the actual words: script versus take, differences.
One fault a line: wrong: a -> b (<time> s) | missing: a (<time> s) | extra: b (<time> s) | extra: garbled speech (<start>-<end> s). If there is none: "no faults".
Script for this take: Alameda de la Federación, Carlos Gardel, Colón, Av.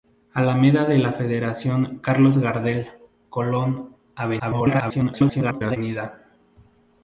extra: garbled speech (4.4-5.8 s)